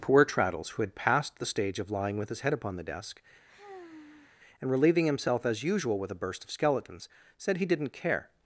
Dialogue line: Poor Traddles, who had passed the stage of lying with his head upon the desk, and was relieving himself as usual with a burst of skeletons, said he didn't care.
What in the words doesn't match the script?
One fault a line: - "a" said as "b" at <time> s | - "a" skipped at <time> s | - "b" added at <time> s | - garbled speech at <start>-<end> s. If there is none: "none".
- "was" skipped at 4.7 s